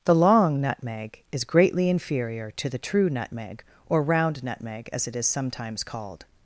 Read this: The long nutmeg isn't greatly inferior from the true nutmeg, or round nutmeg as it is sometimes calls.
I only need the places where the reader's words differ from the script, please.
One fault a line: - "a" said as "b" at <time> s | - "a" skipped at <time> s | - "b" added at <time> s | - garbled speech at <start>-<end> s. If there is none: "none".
- "isn't" said as "is" at 1.3 s
- "from" said as "to" at 2.6 s
- "calls" said as "called" at 5.8 s